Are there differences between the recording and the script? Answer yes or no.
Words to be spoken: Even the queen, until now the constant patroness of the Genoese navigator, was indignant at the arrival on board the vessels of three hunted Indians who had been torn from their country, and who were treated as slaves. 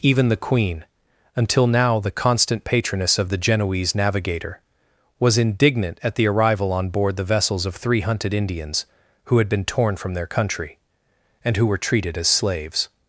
no